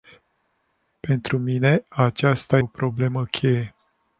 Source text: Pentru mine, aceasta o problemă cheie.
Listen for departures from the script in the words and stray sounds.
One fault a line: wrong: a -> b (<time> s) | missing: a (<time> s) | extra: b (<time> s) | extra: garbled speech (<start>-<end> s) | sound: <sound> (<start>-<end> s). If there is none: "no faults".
no faults